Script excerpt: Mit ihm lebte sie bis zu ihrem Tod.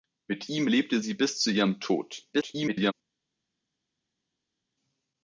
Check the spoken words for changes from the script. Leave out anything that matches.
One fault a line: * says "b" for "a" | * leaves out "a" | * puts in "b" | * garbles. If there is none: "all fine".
* garbles